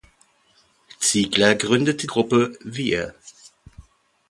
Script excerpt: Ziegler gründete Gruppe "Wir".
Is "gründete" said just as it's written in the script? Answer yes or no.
yes